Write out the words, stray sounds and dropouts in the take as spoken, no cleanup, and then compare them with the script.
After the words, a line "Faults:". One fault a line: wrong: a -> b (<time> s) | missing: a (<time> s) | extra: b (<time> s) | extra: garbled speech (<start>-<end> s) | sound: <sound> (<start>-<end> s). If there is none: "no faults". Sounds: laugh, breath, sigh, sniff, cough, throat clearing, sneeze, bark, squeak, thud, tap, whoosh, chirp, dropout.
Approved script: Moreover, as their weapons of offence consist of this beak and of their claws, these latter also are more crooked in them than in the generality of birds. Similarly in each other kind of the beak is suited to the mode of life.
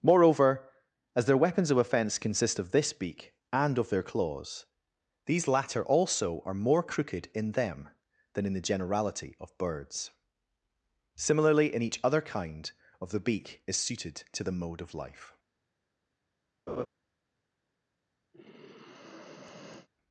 Moreover, as their weapons of offence consist of this beak and of their claws, these latter also are more crooked in them than in the generality of birds. Similarly in each other kind of the beak is suited to the mode of life.
Faults:
sound: laugh (16.7-16.9 s)
sound: sigh (18.3-19.9 s)